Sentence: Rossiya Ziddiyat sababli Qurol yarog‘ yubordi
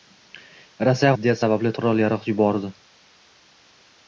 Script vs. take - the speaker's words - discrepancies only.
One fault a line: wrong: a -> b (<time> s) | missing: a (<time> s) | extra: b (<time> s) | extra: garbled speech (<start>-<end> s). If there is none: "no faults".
no faults